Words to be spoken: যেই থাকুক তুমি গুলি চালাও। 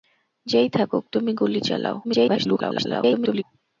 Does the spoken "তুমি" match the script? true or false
true